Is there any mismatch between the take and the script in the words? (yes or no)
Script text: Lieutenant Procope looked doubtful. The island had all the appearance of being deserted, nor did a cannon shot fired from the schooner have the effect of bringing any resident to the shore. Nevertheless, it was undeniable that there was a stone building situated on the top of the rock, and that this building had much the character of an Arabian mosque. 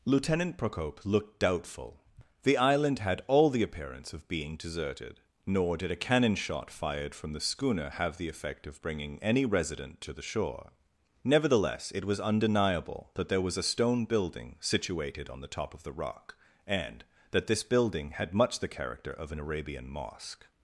no